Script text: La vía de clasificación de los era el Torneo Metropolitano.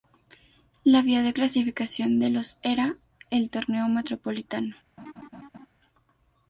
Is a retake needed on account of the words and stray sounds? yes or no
yes